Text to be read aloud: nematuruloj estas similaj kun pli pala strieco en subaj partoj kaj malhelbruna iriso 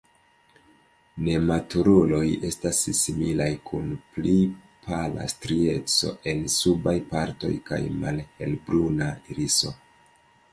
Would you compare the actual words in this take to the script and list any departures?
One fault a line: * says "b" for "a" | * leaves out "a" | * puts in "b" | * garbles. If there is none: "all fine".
all fine